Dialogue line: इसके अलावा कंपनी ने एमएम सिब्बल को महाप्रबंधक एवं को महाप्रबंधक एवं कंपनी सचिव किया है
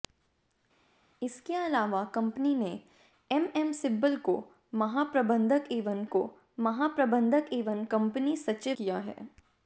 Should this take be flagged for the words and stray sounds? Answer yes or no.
no